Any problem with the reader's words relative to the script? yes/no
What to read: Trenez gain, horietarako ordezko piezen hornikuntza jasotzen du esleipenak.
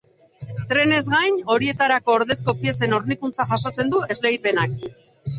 no